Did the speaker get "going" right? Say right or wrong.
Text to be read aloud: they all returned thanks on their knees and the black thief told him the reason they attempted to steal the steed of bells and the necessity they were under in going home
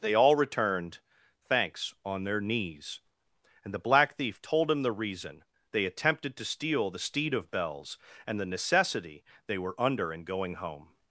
right